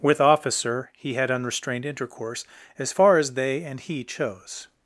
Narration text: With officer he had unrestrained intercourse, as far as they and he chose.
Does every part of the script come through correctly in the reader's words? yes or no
yes